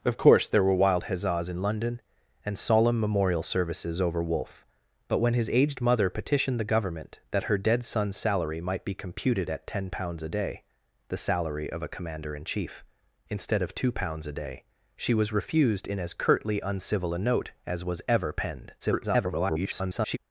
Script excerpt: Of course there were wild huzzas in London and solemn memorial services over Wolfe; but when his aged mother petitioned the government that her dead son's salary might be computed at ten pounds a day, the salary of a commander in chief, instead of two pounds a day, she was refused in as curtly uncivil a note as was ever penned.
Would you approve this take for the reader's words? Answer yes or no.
no